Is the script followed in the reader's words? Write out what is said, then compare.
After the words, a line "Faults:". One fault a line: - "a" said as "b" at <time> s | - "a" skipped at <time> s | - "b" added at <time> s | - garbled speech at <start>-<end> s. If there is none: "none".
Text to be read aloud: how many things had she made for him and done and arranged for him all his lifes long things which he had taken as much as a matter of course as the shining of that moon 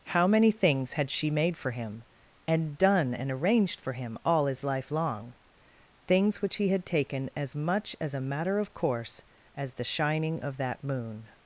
how many things had she made for him and done and arranged for him all his life long things which he had taken as much as a matter of course as the shining of that moon
Faults:
- "lifes" said as "life" at 4.6 s